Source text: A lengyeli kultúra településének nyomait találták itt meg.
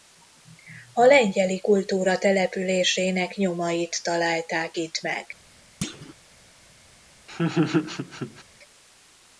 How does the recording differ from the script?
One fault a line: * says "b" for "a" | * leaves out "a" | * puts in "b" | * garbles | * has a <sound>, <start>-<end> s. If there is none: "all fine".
* has a thud, 5.8-6.1 s
* has a laugh, 7.3-8.4 s